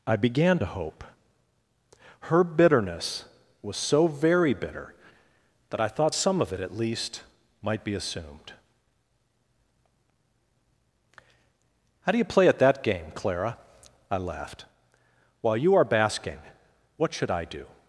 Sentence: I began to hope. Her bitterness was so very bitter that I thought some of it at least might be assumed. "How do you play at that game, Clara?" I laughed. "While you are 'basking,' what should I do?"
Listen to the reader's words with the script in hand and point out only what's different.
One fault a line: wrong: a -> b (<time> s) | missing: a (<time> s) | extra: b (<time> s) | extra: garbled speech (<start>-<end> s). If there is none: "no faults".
no faults